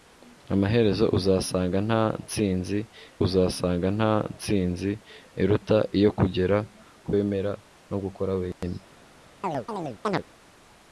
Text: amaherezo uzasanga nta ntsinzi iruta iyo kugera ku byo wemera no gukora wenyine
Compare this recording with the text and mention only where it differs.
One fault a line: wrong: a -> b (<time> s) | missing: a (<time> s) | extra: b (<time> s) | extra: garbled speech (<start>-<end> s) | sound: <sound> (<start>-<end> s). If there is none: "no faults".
extra: uzasanga nta ntsinzi (3.3 s)
missing: byo (7.1 s)
sound: dropout (8.5-8.6 s)
sound: chirp (9.4-10.2 s)